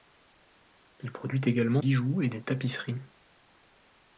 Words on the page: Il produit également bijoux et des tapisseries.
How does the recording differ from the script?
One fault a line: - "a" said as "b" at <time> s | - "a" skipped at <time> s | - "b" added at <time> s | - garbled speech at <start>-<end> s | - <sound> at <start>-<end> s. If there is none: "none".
none